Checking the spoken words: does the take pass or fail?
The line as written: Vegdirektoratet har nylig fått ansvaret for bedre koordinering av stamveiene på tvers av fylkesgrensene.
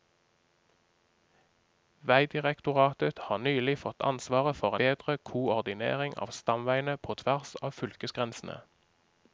pass